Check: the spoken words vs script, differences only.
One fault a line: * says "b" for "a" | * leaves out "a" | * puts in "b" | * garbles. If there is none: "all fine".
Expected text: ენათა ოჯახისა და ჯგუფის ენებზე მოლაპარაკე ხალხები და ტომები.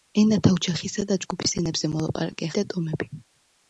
* leaves out "ხალხები"